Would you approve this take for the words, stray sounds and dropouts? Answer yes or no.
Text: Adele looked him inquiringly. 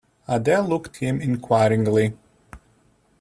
yes